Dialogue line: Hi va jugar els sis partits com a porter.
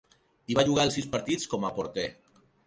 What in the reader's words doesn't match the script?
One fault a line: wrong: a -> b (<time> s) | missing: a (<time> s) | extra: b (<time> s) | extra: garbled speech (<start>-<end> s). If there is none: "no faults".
no faults